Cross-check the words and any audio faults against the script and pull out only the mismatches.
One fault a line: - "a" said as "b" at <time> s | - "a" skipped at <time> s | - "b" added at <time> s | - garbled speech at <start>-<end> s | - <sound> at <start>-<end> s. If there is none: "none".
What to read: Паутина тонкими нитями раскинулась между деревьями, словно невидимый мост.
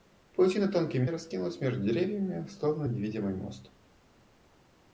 - "нитями" skipped at 1.1 s